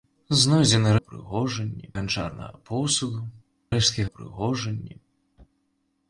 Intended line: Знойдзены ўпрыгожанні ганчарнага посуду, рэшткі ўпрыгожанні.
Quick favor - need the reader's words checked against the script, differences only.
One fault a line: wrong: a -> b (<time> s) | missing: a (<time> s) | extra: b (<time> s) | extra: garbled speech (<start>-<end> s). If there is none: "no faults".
no faults